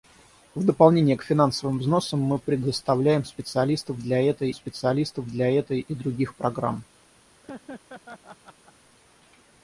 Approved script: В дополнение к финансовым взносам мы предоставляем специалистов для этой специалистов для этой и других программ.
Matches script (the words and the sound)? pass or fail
fail